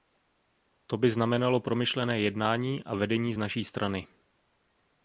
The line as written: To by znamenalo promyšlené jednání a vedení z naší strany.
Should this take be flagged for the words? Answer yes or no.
no